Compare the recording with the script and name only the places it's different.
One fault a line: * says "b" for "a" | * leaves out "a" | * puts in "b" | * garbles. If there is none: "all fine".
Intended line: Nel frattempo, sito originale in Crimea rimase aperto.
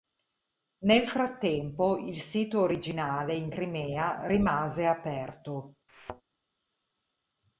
* puts in "il"